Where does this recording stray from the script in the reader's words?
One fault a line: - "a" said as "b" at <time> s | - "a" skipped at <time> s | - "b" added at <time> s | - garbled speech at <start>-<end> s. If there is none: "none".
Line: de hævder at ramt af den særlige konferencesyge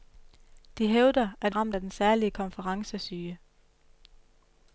none